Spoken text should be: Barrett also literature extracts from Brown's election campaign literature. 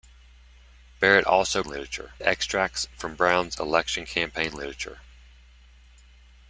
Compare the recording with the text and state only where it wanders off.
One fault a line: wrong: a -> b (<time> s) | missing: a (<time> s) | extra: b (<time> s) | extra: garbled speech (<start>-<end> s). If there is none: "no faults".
no faults